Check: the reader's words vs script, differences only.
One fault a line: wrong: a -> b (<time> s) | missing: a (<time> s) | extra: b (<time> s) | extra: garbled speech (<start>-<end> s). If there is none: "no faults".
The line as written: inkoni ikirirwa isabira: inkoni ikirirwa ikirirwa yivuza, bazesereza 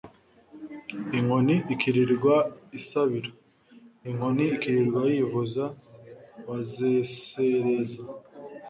missing: ikirirwa (5.0 s)